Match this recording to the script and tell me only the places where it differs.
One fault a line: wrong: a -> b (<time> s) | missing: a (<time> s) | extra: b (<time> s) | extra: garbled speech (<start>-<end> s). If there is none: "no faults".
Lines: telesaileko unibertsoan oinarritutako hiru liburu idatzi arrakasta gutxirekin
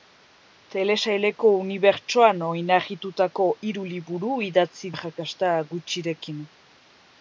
no faults